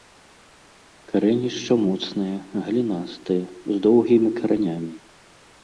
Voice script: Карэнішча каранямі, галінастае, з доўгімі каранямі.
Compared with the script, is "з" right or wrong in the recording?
right